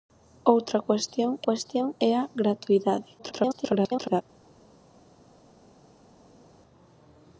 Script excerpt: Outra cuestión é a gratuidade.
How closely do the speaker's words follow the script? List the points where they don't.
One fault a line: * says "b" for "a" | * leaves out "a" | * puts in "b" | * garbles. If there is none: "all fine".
* puts in "cuestión"
* garbles